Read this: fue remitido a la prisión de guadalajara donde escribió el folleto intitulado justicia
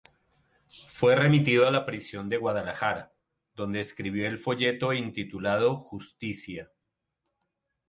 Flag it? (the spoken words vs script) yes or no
no